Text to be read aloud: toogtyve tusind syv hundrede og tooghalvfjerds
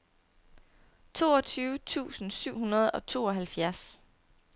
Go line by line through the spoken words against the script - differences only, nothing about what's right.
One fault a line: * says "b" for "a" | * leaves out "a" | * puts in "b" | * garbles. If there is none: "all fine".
all fine